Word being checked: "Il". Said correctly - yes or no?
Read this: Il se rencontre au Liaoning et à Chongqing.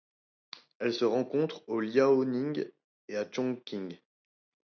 no